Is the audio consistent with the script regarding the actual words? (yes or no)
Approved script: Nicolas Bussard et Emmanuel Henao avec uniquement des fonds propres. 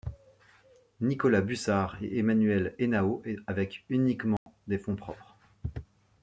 yes